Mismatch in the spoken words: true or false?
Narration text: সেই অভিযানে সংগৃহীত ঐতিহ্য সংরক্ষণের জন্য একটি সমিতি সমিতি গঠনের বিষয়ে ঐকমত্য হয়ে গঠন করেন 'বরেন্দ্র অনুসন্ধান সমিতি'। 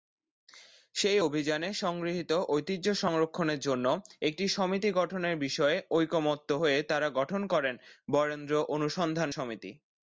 true